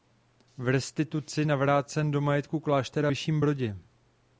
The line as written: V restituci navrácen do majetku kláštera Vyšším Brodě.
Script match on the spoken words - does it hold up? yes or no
yes